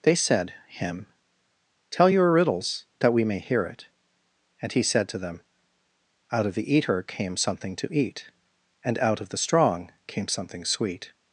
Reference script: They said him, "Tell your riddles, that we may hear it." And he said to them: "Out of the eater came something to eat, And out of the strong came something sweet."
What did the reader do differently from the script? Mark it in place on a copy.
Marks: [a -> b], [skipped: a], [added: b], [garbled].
They said him, "Tell your riddles, that we may hear it." And he said to them: "Out of the eater came something to eat, And out of the strong came something sweet."